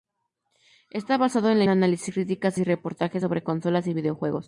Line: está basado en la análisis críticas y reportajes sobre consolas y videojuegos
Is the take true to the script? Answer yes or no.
yes